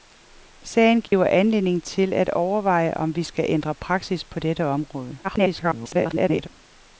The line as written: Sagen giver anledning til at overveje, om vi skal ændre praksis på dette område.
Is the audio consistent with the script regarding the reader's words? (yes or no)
no